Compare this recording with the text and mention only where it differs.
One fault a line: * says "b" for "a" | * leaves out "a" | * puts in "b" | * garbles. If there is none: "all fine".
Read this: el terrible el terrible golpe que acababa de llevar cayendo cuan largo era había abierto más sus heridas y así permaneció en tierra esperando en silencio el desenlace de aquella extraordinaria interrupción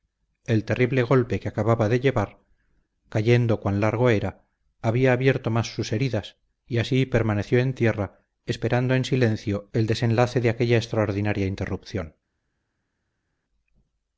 * leaves out "el terrible"